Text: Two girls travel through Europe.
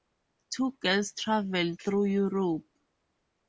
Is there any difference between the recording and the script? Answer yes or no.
no